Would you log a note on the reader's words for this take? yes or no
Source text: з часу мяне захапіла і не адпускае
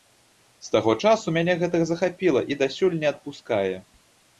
yes